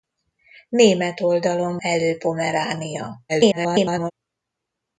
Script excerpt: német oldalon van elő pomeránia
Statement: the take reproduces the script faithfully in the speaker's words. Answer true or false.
false